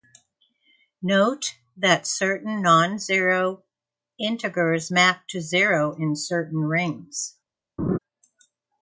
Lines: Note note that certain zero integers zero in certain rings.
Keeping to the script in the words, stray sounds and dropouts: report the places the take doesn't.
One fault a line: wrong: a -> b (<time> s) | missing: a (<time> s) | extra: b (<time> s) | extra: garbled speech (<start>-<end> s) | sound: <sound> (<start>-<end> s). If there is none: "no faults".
missing: note (1.6 s)
extra: non (2.6 s)
extra: map to (4.9 s)
sound: laugh (7.8-8.0 s)